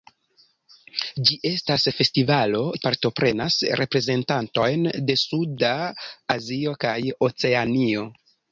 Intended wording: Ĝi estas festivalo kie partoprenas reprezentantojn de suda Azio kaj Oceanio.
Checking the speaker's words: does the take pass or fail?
fail